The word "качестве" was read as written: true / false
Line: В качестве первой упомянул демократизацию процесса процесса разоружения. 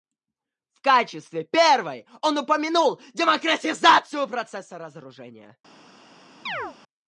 true